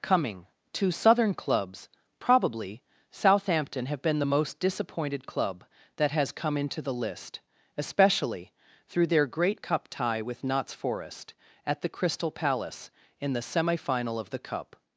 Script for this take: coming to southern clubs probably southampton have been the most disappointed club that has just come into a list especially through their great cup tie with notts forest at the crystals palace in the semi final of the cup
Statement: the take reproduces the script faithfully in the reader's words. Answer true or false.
false